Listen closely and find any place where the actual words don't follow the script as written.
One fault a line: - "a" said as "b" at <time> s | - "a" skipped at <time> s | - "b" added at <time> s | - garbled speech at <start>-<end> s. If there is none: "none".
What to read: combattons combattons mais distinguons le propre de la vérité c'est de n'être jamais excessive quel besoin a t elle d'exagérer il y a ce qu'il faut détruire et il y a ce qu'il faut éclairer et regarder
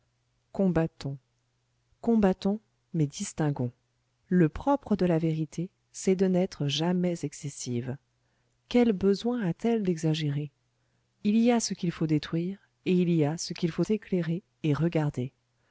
none